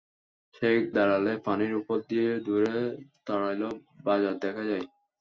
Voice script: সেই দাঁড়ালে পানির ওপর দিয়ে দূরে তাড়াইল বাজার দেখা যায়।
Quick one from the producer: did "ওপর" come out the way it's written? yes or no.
yes